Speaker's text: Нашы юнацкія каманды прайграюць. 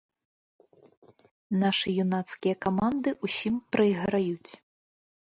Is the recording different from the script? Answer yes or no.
yes